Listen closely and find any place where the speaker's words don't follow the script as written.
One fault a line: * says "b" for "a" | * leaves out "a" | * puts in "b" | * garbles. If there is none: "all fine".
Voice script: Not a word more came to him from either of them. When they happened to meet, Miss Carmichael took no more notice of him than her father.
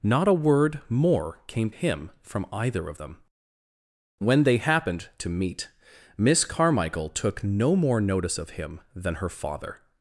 * leaves out "to"